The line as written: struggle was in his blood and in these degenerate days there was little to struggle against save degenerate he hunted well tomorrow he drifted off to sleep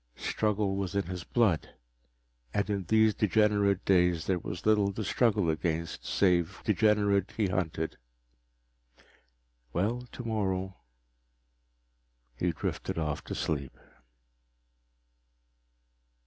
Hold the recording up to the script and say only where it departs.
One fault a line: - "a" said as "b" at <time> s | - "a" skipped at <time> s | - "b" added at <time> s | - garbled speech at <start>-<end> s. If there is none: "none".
none